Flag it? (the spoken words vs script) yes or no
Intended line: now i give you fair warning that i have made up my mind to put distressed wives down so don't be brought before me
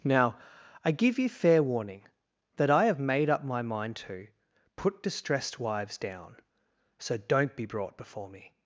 no